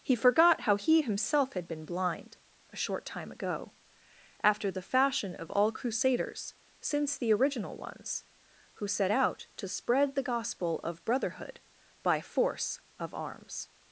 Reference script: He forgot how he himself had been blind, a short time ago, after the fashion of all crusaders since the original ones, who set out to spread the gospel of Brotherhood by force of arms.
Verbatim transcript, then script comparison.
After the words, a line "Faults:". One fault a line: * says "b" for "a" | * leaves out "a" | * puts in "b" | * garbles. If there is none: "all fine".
He forgot how he himself had been blind, a short time ago, after the fashion of all crusaders since the original ones, who set out to spread the gospel of Brotherhood by force of arms.
Faults:
all fine